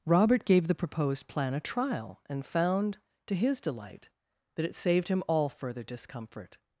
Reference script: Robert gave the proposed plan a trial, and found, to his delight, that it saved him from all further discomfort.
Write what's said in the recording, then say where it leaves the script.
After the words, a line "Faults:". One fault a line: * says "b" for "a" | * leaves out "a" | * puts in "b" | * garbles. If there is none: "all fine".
Robert gave the proposed plan a trial, and found, to his delight, that it saved him all further discomfort.
Faults:
* leaves out "from"